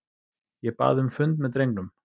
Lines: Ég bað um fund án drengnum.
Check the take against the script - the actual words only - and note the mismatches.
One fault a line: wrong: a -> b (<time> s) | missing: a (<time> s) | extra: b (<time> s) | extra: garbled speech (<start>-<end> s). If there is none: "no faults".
wrong: án -> með (1.4 s)